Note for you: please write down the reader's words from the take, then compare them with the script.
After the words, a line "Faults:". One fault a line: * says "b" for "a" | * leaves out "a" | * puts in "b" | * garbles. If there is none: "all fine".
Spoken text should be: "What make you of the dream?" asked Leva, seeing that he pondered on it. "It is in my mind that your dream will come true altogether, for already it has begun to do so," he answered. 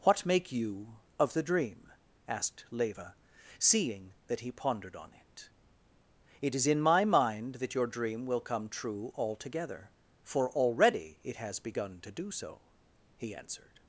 "What make you of the dream?" asked Leva, seeing that he pondered on it. "It is in my mind that your dream will come true altogether, for already it has begun to do so," he answered.
Faults:
all fine